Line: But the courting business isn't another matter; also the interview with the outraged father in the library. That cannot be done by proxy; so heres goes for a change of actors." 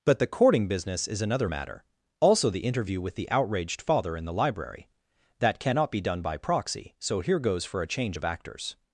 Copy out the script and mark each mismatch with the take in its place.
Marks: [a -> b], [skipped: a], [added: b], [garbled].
But the courting business [isn't -> is] another matter; also the interview with the outraged father in the library. That cannot be done by proxy; so [heres -> here] goes for a change of actors."